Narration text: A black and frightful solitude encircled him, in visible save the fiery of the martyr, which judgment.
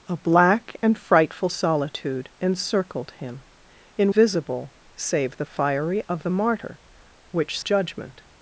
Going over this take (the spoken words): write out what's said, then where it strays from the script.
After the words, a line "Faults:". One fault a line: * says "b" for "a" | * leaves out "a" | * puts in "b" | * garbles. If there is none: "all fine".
A black and frightful solitude encircled him, in visible save the fiery of the martyr, which judgment.
Faults:
all fine